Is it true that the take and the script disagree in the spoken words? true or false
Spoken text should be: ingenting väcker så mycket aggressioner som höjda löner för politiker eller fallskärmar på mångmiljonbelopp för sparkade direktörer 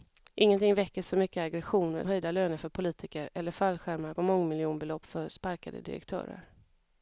true